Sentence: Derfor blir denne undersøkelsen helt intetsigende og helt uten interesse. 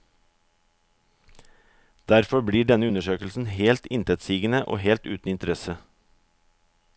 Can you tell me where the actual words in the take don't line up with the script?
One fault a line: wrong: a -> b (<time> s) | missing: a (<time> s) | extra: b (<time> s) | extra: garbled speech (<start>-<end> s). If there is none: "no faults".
no faults